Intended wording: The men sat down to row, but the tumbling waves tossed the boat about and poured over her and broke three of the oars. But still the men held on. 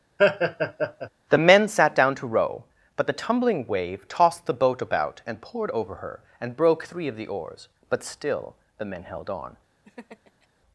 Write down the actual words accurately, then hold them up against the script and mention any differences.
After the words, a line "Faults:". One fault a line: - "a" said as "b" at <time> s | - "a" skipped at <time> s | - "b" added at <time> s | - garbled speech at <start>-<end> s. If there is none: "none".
The men sat down to row, but the tumbling wave tossed the boat about and poured over her and broke three of the oars. But still the men held on.
Faults:
- "waves" said as "wave" at 3.7 s